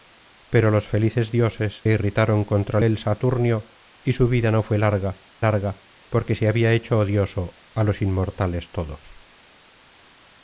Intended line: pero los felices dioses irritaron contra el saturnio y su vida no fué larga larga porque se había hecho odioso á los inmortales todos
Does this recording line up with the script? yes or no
yes